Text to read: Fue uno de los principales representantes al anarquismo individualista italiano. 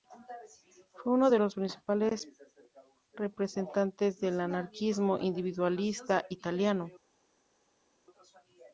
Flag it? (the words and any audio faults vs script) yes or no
yes